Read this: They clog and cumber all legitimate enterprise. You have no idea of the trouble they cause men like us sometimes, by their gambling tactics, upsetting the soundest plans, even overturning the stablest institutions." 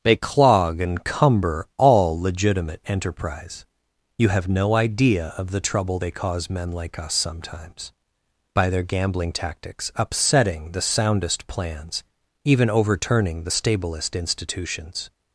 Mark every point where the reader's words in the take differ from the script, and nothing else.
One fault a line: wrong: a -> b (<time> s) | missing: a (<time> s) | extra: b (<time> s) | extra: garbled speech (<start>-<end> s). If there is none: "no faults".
no faults